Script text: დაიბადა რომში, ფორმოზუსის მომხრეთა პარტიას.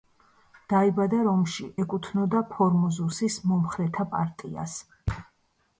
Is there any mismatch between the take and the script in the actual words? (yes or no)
yes